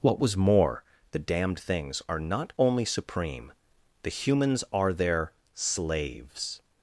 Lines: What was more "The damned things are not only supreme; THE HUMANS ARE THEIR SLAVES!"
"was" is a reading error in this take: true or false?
false